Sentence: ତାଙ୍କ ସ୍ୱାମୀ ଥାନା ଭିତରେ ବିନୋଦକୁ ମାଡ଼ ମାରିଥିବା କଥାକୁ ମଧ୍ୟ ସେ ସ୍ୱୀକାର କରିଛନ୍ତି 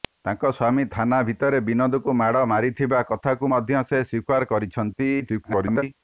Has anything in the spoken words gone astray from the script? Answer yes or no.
yes